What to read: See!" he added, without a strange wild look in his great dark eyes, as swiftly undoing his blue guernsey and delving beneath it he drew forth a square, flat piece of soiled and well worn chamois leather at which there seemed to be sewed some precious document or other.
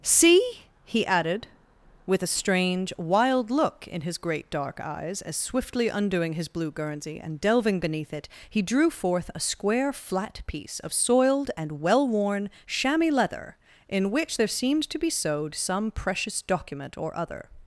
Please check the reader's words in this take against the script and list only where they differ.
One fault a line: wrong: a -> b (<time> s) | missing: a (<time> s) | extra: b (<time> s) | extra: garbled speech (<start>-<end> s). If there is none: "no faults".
wrong: without -> with (2.1 s)
wrong: at -> in (13.9 s)